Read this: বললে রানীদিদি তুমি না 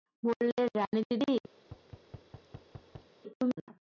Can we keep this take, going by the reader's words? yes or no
yes